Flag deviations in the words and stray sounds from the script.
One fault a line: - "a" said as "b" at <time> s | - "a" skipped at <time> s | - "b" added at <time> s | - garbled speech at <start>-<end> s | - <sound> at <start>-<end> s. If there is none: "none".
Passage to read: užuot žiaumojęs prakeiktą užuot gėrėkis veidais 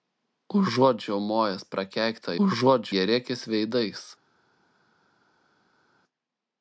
none